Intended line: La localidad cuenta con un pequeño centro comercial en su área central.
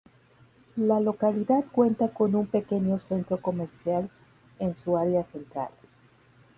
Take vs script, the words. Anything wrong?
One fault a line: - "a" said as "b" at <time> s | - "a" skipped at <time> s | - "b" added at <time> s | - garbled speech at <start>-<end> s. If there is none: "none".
none